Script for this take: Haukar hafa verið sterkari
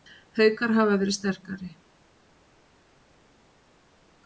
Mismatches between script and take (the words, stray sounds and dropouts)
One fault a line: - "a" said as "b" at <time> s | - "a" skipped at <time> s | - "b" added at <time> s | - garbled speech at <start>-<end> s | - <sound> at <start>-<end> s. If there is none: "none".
none